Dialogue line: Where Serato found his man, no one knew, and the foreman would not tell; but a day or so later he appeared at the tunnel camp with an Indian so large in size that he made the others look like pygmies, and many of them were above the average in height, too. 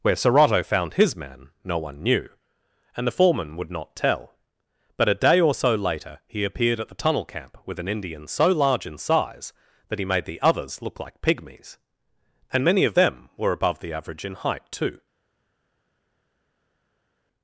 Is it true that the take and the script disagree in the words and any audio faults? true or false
false